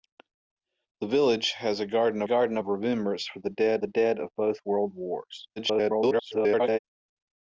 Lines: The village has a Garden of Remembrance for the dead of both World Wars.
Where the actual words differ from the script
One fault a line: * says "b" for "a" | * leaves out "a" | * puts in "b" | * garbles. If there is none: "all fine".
* puts in "Garden"
* puts in "the dead"
* garbles